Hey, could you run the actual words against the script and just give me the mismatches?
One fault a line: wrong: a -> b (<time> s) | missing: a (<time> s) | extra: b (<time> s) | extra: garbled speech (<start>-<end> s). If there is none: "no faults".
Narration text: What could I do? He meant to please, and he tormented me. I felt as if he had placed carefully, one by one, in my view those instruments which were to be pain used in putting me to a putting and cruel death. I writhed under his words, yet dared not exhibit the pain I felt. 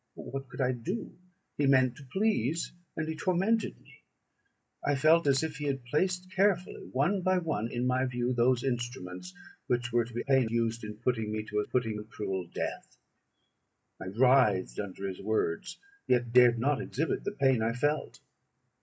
no faults